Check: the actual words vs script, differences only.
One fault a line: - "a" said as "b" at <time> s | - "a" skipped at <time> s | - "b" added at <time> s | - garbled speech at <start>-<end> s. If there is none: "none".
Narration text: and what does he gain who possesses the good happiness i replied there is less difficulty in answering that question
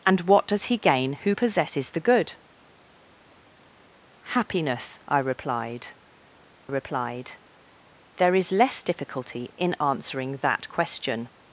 - "replied" added at 6.7 s